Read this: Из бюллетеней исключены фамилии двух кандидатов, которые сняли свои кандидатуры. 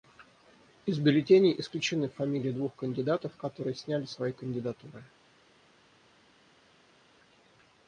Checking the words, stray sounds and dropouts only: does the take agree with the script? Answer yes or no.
yes